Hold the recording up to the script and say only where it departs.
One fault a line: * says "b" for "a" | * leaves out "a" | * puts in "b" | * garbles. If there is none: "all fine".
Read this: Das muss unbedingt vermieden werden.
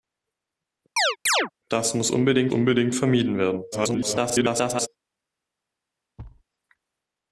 * puts in "unbedingt"
* garbles